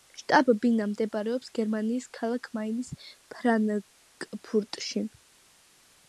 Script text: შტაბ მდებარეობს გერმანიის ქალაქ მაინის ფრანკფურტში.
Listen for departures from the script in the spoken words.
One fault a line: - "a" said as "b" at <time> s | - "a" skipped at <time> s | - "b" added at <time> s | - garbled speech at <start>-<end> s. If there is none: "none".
- "ბინა" added at 0.6 s